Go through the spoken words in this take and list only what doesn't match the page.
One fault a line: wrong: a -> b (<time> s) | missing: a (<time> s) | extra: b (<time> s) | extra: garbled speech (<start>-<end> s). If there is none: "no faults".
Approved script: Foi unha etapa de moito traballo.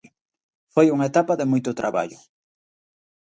no faults